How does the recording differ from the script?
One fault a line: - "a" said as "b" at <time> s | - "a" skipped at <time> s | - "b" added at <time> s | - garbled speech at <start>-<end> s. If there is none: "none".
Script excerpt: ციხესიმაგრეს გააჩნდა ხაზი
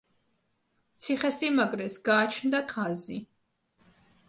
none